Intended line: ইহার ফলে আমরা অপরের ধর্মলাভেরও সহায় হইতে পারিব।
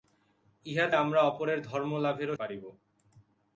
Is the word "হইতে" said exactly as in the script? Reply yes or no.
no